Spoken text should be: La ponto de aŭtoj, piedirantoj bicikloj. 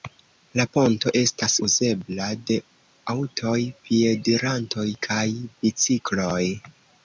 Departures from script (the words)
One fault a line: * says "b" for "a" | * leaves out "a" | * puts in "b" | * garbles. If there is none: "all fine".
* puts in "estas uzebla"
* puts in "kaj"